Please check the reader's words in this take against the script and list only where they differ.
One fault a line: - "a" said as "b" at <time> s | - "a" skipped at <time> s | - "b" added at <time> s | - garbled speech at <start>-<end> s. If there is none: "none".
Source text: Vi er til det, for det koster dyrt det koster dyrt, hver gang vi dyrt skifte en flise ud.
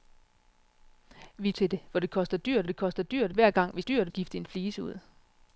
none